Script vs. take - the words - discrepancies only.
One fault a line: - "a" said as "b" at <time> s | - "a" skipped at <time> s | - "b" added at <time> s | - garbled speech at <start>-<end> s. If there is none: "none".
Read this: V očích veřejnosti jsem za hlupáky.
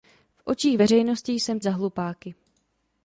none